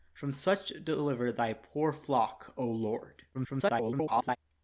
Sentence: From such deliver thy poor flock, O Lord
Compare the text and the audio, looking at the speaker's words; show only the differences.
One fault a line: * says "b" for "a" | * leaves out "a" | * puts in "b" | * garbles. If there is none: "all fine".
* garbles